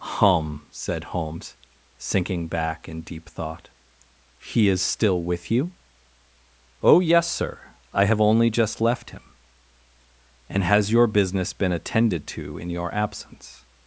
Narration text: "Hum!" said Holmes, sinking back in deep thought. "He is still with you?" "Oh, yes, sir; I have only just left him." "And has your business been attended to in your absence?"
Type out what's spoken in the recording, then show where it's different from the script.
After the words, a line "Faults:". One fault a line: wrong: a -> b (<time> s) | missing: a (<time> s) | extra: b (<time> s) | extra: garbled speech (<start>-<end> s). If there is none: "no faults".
"Hum!" said Holmes, sinking back in deep thought. "He is still with you?" "Oh, yes, sir; I have only just left him." "And has your business been attended to in your absence?"
Faults:
no faults